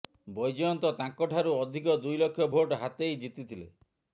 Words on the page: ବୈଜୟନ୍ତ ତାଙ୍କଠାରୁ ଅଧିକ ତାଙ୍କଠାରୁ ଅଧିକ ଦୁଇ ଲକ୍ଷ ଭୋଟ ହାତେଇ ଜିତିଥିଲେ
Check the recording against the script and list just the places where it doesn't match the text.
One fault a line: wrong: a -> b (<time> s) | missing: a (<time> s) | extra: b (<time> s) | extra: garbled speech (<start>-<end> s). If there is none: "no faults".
missing: ତାଙ୍କଠାରୁ ଅଧିକ (2.0 s)